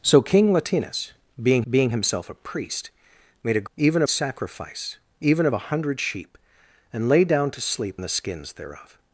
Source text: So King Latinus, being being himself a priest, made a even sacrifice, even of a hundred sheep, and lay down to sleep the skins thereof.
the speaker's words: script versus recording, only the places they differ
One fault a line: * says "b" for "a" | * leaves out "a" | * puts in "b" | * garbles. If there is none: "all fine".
all fine